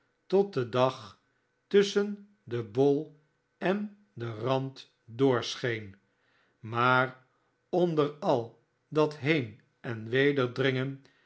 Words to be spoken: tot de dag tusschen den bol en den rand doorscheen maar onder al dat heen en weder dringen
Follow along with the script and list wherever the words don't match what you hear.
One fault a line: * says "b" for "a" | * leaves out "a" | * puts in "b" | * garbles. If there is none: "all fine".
all fine